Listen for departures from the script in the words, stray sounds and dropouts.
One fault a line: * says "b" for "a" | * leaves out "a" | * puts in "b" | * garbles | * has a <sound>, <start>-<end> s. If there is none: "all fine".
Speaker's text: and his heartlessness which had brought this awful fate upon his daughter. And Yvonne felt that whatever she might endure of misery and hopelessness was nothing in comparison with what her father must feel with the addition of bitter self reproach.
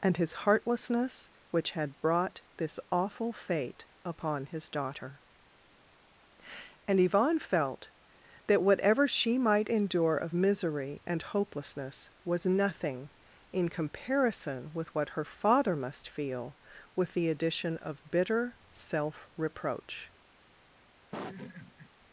* has a laugh, 21.1-21.9 s